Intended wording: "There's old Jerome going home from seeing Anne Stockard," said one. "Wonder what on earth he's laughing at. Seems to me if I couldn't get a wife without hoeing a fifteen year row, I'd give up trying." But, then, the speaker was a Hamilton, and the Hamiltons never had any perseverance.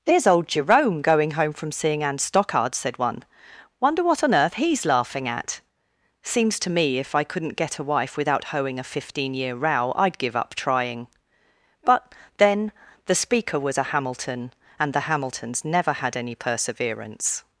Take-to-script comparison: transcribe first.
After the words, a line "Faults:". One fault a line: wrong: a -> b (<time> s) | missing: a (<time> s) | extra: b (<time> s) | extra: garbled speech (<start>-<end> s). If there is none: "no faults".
"There's old Jerome going home from seeing Anne Stockard," said one. "Wonder what on earth he's laughing at. Seems to me if I couldn't get a wife without hoeing a fifteen year row, I'd give up trying." But, then, the speaker was a Hamilton, and the Hamiltons never had any perseverance.
Faults:
no faults